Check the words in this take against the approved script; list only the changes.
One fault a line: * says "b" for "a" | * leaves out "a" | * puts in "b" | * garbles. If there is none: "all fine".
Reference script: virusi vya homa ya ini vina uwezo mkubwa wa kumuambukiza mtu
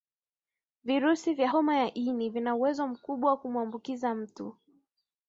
all fine